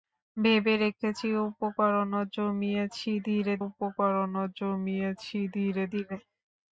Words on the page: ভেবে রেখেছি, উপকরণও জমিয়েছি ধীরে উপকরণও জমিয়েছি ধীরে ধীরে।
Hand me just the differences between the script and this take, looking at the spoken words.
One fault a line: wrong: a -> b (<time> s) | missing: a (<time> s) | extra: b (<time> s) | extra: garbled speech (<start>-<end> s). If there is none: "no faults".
no faults